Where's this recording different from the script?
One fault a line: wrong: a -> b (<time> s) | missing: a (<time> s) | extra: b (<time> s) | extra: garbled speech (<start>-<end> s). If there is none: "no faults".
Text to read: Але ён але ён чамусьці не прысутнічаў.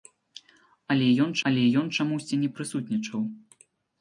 no faults